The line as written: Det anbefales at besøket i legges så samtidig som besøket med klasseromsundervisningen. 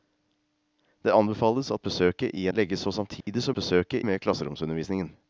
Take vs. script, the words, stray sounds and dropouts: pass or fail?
fail